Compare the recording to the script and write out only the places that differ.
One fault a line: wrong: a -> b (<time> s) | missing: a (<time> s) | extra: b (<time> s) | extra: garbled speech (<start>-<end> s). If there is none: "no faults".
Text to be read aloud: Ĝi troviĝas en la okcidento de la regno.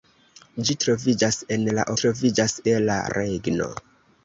wrong: okcidento -> troviĝas (2.0 s)